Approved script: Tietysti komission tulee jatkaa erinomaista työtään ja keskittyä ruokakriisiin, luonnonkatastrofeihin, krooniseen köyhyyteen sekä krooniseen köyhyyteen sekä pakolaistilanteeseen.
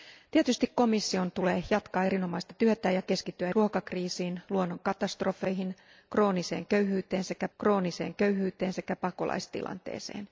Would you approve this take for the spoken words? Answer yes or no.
yes